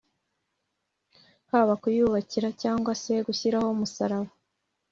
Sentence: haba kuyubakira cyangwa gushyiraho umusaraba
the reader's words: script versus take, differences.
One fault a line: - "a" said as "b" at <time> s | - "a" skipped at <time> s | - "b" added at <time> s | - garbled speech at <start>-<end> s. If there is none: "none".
- "se" added at 3.0 s